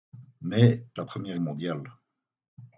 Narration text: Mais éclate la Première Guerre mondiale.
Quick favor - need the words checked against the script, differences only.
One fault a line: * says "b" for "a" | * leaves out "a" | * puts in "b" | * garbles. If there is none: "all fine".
* leaves out "éclate"
* leaves out "Guerre"